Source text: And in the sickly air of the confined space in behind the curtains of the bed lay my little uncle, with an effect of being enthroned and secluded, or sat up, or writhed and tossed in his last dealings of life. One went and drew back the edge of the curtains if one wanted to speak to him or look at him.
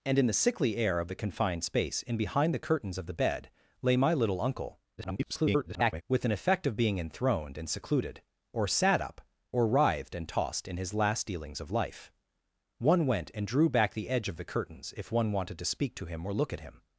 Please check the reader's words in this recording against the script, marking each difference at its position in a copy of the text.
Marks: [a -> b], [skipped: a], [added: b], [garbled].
And in the sickly air of the confined space in behind the curtains of the bed lay my little uncle, [garbled] with an effect of being enthroned and secluded, or sat up, or writhed and tossed in his last dealings of life. One went and drew back the edge of the curtains if one wanted to speak to him or look at him.